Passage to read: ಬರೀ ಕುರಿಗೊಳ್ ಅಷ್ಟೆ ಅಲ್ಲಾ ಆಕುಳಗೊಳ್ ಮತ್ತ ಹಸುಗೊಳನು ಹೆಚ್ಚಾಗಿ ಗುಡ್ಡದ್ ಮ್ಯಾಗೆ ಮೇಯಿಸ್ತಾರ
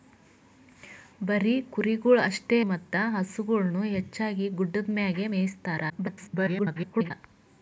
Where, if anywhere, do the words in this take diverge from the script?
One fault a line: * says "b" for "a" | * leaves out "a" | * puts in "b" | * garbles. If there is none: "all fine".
* leaves out "ಅಲ್ಲಾ ಆಕುಳಗೊಳ್"
* garbles